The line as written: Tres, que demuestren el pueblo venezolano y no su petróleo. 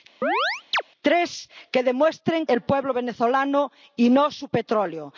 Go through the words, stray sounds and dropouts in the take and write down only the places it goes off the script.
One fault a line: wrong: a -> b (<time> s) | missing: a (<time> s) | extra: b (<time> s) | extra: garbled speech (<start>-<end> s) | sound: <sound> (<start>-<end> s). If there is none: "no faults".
sound: chirp (0.2-0.8 s)